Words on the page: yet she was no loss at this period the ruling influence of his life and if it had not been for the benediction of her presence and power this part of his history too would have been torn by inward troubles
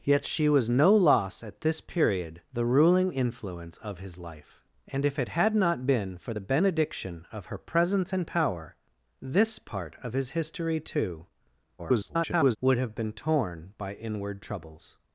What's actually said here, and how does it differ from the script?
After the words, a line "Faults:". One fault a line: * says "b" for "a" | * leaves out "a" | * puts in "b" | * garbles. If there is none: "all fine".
yet she was no loss at this period the ruling influence of his life and if it had not been for the benediction of her presence and power this part of his history too [garbled] would have been torn by inward troubles
Faults:
* garbles